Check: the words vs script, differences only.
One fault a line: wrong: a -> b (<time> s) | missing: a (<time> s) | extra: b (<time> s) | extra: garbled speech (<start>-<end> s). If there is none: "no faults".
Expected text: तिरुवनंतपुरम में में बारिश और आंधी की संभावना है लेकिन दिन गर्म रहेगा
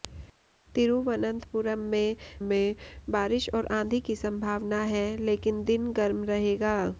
no faults